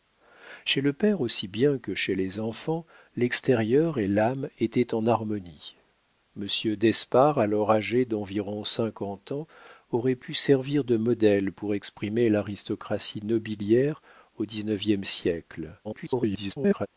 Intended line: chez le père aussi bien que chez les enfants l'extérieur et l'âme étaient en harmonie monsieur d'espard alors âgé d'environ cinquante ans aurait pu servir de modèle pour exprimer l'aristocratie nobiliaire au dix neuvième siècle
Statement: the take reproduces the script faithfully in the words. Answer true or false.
false